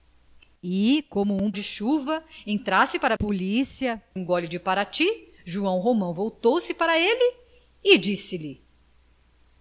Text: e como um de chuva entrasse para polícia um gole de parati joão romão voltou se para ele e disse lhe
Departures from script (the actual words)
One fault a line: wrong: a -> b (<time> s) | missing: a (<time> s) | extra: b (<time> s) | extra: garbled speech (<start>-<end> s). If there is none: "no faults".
no faults